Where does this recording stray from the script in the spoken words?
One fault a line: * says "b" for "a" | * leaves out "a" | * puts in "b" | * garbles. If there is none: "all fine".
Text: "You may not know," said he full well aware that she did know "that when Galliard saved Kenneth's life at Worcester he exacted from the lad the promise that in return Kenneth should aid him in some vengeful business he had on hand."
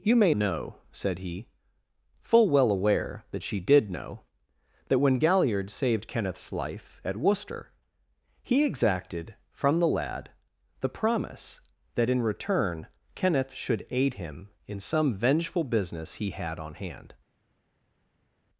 * leaves out "not"